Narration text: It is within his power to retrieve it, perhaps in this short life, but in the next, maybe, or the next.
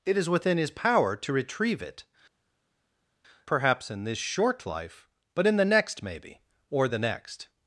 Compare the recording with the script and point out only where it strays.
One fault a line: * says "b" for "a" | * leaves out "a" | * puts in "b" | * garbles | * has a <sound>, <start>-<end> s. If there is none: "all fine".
all fine